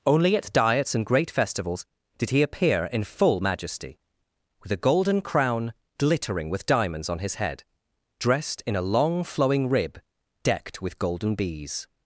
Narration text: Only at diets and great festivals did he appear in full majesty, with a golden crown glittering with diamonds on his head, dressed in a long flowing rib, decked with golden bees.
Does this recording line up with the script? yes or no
yes